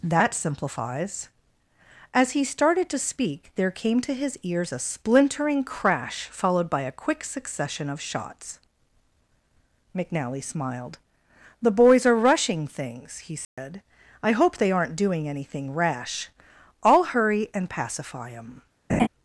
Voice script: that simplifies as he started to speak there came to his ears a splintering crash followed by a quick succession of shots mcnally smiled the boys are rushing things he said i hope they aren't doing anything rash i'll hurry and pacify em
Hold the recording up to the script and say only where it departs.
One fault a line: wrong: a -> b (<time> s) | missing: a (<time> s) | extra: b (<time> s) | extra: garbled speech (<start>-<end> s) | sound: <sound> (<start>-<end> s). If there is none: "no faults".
sound: dropout (13.4-13.6 s)
sound: laugh (18.9-19.1 s)